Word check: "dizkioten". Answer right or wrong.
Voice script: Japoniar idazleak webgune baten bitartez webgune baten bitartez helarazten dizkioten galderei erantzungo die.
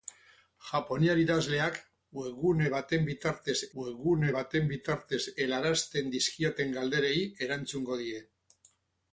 right